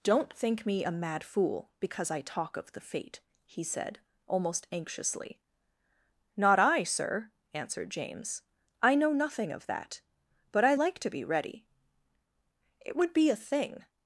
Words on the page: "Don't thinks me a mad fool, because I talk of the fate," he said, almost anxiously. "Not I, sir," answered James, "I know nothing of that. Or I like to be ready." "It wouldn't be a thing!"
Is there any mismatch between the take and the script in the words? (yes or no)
yes